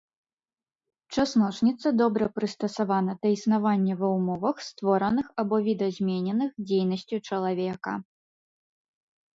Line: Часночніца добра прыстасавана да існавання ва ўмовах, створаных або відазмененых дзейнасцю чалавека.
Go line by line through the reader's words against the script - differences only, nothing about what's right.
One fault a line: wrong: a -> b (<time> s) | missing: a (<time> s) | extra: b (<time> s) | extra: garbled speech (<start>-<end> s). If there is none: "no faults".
no faults